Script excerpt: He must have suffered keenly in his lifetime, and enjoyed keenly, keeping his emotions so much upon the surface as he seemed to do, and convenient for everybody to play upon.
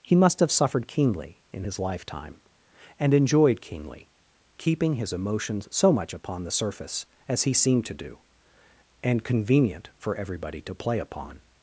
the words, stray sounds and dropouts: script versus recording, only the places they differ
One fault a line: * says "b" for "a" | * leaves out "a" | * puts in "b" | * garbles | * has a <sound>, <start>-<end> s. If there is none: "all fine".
all fine